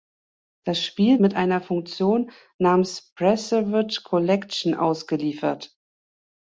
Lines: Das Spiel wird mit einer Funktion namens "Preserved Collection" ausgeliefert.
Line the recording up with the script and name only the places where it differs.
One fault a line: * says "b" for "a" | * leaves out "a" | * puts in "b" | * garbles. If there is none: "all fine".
* leaves out "wird"